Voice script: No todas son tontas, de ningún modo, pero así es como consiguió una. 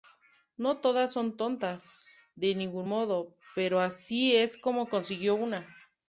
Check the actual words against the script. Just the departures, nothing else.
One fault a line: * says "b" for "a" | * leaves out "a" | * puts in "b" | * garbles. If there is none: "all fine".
all fine